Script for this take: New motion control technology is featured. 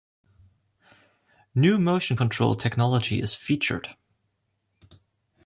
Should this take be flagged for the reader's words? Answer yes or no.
no